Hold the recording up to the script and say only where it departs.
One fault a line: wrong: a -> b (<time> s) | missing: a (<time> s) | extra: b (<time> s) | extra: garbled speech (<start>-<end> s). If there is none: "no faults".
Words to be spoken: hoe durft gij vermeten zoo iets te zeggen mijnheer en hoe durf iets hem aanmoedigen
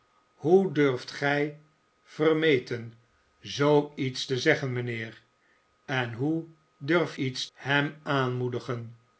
no faults